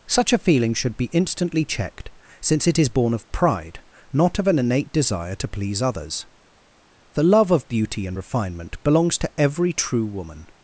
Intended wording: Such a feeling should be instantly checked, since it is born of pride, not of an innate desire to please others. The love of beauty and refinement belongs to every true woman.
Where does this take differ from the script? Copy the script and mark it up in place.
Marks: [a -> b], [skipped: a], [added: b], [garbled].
Such a feeling should be instantly checked, since it is born of pride, not of an innate desire to please others. The love of beauty and refinement belongs to every true woman.